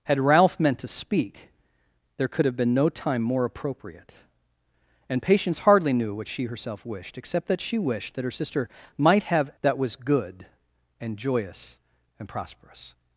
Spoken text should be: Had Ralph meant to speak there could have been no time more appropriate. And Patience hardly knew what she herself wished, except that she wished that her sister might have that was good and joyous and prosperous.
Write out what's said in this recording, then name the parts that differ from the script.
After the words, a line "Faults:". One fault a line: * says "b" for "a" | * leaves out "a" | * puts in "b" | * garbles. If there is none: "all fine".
Had Ralph meant to speak there could have been no time more appropriate. And Patience hardly knew what she herself wished, except that she wished that her sister might have that was good and joyous and prosperous.
Faults:
all fine